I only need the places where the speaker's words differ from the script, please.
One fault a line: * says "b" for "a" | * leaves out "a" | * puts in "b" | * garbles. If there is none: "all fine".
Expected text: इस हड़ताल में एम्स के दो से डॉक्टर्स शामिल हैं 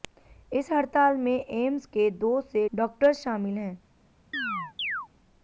all fine